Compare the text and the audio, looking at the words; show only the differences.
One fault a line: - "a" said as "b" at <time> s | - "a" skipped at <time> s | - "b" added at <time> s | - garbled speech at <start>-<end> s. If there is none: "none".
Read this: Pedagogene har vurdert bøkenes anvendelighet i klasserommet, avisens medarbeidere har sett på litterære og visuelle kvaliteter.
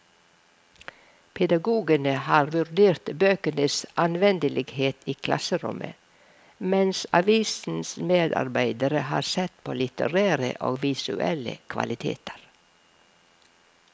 - "mens" added at 6.7 s